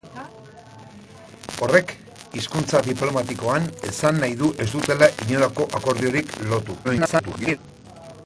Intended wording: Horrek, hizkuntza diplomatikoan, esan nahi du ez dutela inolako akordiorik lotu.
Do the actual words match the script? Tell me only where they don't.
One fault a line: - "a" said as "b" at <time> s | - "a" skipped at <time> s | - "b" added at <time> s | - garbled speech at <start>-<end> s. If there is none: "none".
- garbled speech at 6.8-7.6 s